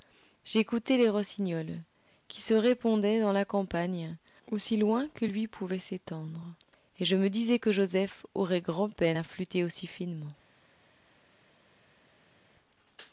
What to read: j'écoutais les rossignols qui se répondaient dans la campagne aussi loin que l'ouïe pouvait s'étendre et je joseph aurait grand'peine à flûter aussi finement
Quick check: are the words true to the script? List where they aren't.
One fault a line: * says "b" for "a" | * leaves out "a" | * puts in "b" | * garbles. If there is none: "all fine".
* puts in "me disais que"